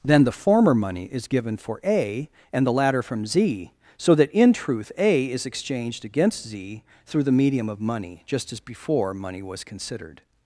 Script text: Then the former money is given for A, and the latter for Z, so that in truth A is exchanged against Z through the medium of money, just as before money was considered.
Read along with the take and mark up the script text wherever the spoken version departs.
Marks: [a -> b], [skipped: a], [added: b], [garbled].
Then the former money is given for A, and the latter [for -> from] Z, so that in truth A is exchanged against Z through the medium of money, just as before money was considered.